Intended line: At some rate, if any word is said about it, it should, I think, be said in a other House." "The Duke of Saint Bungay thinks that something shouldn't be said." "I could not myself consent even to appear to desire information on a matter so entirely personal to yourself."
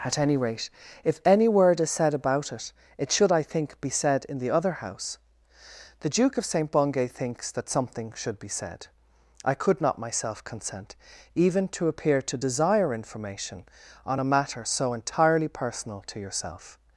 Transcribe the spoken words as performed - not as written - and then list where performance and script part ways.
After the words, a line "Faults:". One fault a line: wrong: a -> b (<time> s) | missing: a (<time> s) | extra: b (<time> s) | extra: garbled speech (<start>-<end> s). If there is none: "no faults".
At any rate, if any word is said about it, it should, I think, be said in the other House." "The Duke of Saint Bungay thinks that something should be said." "I could not myself consent even to appear to desire information on a matter so entirely personal to yourself."
Faults:
wrong: some -> any (0.2 s)
wrong: a -> the (4.4 s)
wrong: shouldn't -> should (8.1 s)